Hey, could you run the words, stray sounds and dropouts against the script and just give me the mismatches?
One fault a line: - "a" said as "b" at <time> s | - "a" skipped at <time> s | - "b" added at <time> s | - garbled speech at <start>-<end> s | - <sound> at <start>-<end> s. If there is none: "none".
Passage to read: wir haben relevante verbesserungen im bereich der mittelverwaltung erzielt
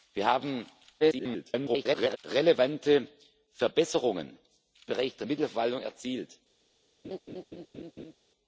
- garbled speech at 1.0-2.2 s
- "im" skipped at 4.4 s
- laugh at 7.0-8.2 s